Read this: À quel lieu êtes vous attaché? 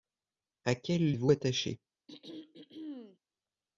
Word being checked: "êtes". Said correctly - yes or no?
no